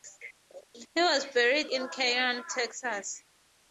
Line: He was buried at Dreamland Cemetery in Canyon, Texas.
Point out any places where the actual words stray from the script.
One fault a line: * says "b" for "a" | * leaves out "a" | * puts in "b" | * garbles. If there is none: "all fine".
* leaves out "at Dreamland Cemetery"